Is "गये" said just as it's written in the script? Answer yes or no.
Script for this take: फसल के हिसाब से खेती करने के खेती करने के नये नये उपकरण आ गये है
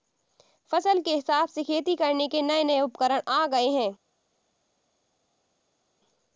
yes